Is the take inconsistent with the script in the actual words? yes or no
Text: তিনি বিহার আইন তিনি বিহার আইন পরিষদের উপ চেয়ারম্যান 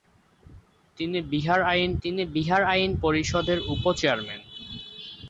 no